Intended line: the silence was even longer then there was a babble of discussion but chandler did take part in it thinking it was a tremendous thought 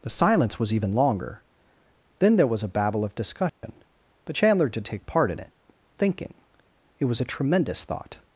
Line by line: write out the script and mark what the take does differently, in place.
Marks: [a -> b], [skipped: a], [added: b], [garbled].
the silence was even longer then there was a babble of discussion but chandler did take part in it thinking it was a tremendous thought